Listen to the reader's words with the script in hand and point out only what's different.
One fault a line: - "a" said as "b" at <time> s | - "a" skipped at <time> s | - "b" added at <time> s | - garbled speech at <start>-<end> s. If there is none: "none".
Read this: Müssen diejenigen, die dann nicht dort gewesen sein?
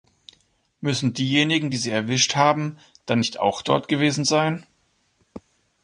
- "sie erwischt haben" added at 1.8 s
- "auch" added at 3.4 s